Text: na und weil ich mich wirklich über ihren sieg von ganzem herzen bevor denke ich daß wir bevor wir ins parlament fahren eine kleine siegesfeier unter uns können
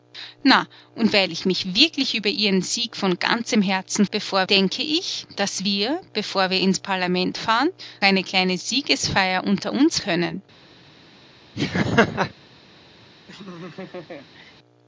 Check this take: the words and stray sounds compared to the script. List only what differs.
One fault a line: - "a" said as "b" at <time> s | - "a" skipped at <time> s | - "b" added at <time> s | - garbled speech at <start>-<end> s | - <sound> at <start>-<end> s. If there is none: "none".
- laugh at 11.5-12.3 s
- laugh at 13.3-14.5 s